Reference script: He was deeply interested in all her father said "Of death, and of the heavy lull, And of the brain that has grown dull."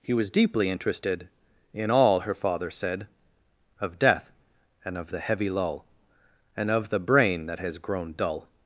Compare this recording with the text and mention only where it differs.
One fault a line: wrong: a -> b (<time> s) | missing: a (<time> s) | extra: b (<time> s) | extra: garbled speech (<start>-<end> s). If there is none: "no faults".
no faults